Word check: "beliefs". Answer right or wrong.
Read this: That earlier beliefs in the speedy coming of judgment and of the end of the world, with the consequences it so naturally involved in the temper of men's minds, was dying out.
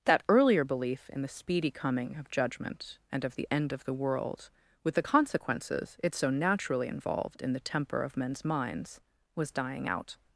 wrong